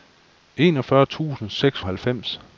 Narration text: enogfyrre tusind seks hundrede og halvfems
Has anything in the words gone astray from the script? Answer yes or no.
yes